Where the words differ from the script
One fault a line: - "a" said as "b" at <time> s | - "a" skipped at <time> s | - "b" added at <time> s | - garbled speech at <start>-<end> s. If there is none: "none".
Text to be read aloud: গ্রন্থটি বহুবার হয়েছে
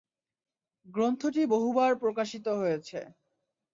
- "প্রকাশিত" added at 2.0 s